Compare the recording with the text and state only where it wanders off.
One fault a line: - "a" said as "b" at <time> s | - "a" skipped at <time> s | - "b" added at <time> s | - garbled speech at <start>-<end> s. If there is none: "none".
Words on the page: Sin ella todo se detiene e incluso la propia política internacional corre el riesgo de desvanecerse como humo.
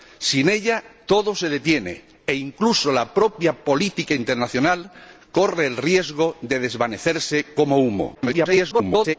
- garbled speech at 8.1-9.2 s